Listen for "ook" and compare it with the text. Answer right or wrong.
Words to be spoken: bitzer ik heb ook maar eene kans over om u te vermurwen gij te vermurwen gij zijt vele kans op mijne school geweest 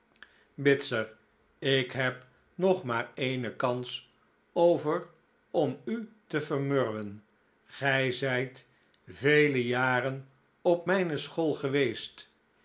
wrong